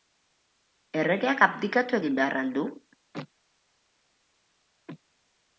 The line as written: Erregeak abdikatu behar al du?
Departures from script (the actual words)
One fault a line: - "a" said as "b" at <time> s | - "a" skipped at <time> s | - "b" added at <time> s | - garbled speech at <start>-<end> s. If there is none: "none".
- "egin" added at 2.0 s